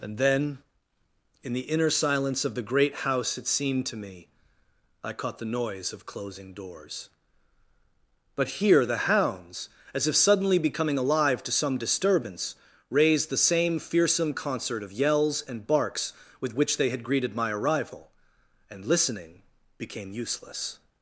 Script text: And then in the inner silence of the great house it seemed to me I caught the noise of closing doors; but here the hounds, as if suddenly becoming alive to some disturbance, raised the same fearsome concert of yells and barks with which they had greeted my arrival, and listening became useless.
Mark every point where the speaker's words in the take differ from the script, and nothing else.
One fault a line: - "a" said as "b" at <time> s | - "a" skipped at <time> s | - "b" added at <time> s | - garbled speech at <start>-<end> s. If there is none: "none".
none